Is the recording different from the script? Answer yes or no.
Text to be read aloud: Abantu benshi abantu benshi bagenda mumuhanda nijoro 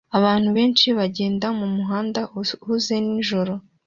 yes